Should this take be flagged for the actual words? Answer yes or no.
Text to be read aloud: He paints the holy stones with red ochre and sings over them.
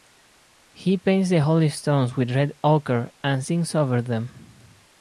no